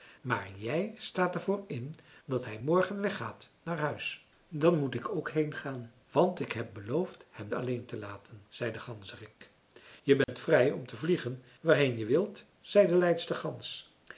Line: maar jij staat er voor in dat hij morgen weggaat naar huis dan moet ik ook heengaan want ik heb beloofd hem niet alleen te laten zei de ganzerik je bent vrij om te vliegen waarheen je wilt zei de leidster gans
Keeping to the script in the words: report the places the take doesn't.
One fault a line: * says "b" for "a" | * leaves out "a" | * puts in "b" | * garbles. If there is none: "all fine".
* leaves out "niet"